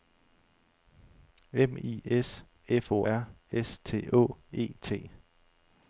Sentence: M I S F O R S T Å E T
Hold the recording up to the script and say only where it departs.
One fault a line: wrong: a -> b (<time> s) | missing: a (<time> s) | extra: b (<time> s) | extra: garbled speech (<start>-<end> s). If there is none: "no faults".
no faults